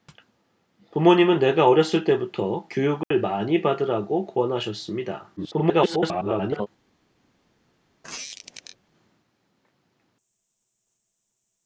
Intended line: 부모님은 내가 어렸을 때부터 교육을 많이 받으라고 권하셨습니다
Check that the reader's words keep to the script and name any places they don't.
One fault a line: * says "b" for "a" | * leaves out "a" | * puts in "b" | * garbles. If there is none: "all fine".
* garbles